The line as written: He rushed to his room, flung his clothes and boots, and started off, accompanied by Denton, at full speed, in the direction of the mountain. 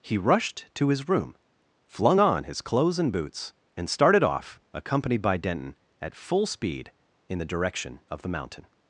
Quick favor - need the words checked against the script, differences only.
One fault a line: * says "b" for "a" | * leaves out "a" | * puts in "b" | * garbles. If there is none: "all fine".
* puts in "on"